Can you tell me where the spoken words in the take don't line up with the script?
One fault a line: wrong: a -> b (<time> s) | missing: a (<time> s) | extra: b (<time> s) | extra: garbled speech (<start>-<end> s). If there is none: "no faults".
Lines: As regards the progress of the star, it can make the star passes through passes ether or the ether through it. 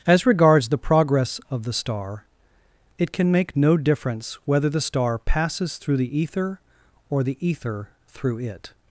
extra: no difference whether (3.5 s)
wrong: passes -> the (6.0 s)